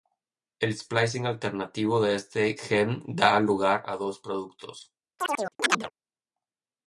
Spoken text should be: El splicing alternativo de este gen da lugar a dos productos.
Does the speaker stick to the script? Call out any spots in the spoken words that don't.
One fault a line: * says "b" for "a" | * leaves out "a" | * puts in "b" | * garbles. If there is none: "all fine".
all fine